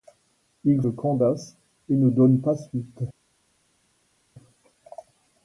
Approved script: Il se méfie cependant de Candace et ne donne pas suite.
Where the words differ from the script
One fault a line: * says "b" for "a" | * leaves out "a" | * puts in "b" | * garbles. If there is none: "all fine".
* leaves out "se méfie cependant"